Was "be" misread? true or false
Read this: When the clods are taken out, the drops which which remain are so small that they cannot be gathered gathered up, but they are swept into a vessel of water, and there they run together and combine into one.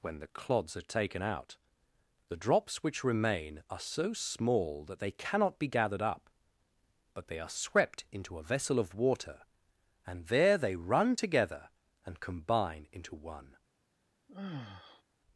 false